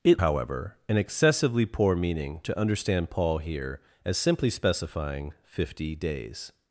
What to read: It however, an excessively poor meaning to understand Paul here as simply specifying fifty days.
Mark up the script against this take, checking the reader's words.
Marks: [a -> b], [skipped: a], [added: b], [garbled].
It however, an excessively poor meaning to understand Paul here as simply specifying fifty days.